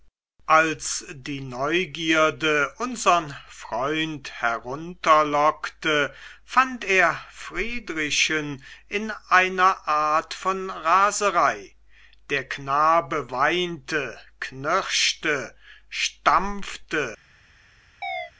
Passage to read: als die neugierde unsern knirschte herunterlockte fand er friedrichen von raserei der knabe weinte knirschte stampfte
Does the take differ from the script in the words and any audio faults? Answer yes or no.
yes